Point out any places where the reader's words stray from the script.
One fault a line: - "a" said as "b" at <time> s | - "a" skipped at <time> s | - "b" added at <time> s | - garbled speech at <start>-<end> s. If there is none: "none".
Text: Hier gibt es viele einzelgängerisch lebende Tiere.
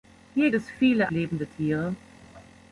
- "gibt" skipped at 0.5 s
- "einzelgängerisch" skipped at 1.1 s